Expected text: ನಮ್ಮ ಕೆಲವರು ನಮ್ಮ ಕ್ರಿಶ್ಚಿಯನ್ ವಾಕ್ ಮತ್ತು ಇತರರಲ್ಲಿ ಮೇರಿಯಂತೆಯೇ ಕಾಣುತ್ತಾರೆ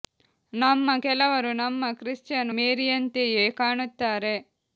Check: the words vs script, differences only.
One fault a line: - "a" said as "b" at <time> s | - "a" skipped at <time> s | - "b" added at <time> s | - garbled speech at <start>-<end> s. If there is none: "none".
- "ವಾಕ್ ಮತ್ತು ಇತರರಲ್ಲಿ" skipped at 2.5 s